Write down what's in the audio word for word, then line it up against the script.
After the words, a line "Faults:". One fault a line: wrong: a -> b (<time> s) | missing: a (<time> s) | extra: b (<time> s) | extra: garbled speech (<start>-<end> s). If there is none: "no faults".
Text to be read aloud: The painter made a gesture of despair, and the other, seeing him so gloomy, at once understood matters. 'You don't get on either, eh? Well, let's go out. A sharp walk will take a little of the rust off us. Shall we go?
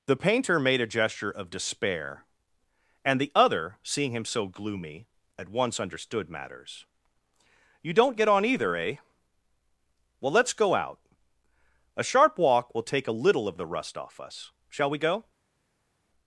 The painter made a gesture of despair, and the other, seeing him so gloomy, at once understood matters. 'You don't get on either, eh? Well, let's go out. A sharp walk will take a little of the rust off us. Shall we go?
Faults:
no faults